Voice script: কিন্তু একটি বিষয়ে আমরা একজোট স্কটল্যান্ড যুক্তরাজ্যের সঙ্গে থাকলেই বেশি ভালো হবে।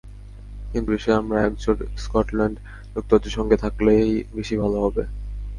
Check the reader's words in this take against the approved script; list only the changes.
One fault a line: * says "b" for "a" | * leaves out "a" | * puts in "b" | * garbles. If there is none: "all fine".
* leaves out "একটি"